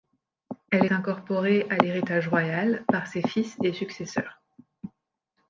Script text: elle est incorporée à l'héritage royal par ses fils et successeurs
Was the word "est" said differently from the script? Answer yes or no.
yes